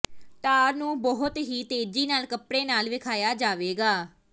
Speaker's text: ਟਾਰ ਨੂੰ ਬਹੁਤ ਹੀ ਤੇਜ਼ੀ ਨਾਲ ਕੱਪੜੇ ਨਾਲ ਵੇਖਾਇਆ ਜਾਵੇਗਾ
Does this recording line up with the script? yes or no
yes